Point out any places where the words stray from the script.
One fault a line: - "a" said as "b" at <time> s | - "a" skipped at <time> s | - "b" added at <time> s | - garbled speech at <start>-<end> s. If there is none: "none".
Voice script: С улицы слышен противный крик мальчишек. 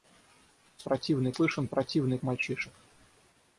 - "улицы" said as "противный" at 0.8 s
- "крик" skipped at 2.2 s